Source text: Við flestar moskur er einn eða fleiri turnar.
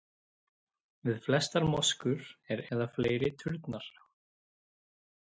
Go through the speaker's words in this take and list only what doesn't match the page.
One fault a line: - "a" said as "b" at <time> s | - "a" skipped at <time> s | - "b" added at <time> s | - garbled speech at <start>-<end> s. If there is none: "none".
- "einn" skipped at 2.6 s